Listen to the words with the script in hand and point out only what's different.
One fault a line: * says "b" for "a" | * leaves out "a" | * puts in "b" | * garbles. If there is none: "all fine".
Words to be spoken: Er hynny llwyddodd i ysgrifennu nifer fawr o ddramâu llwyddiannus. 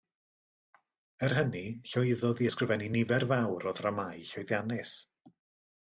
all fine